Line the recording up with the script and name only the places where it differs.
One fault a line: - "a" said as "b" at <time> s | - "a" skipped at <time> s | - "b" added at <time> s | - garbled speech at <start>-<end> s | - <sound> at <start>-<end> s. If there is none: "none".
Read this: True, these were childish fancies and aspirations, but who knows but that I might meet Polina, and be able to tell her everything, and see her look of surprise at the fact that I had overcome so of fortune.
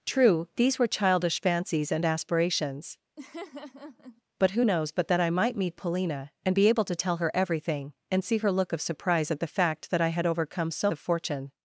- laugh at 3.2-4.2 s